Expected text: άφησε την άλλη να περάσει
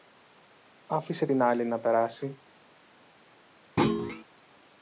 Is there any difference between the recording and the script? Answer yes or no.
no